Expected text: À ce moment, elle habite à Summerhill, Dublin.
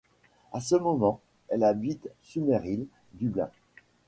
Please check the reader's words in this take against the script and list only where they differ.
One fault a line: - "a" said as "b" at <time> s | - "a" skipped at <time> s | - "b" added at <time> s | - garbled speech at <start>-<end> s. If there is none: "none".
- "à" skipped at 2.1 s